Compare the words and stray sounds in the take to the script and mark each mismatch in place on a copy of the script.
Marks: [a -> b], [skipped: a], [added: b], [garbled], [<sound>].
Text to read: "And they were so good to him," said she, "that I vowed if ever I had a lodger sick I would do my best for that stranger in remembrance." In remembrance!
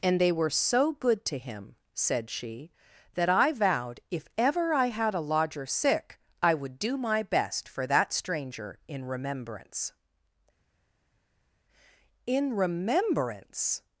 "And they were so good to him," said she, "that I vowed if ever I had a lodger sick I would do my best for that stranger in remembrance." In remembrance!